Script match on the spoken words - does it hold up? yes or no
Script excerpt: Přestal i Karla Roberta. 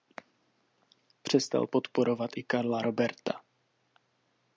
no